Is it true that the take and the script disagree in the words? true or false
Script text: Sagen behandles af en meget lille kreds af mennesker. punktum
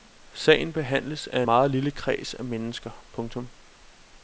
true